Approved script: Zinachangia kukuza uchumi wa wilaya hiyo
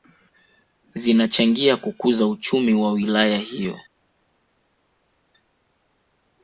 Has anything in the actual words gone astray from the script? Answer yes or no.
no